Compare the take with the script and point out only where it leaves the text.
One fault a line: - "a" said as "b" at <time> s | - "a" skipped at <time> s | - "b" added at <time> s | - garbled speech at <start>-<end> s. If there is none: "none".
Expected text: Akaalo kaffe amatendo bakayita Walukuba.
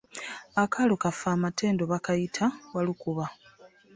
none